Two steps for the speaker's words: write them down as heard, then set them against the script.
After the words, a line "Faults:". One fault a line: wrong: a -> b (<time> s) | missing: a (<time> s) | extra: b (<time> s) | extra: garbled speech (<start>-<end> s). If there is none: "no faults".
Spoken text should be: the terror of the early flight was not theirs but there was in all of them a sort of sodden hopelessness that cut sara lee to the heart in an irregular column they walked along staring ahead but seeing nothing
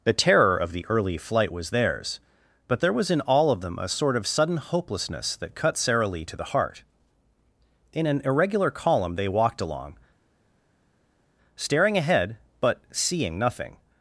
the terror of the early flight was theirs but there was in all of them a sort of sudden hopelessness that cut sara lee to the heart in an irregular column they walked along staring ahead but seeing nothing
Faults:
missing: not (1.7 s)
wrong: sodden -> sudden (4.2 s)